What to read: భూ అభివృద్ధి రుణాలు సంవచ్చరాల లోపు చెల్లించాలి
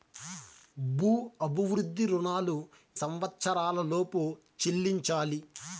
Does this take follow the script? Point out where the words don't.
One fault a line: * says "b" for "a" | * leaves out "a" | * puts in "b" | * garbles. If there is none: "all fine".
all fine